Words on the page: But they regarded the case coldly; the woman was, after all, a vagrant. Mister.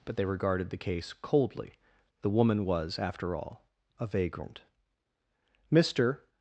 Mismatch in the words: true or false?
false